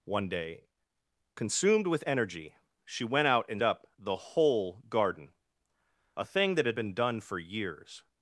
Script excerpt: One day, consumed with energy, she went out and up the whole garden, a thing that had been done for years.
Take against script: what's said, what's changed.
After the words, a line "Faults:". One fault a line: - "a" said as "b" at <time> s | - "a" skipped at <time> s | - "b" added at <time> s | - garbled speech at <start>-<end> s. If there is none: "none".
One day, consumed with energy, she went out and up the whole garden, a thing that had been done for years.
Faults:
none